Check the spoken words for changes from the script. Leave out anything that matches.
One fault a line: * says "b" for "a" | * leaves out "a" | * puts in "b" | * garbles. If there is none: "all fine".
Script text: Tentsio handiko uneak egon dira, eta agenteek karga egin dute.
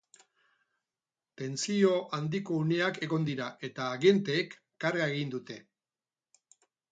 all fine